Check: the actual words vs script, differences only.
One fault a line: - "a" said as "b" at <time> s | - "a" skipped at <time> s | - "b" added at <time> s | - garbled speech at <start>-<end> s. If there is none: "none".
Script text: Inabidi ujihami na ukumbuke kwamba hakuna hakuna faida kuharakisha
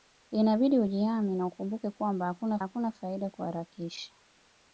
none